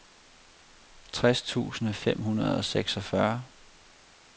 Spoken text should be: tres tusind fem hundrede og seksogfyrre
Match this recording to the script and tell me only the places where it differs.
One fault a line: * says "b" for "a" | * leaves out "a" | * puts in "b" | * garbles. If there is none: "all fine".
all fine